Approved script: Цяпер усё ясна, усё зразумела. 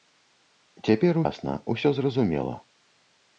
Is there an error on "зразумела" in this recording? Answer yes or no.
no